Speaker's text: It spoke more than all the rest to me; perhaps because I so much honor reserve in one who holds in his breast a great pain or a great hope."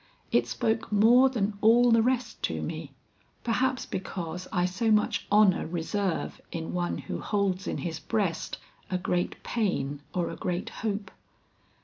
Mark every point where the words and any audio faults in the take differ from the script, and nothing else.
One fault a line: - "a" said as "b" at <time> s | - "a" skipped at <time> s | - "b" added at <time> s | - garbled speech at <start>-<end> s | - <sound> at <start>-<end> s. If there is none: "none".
none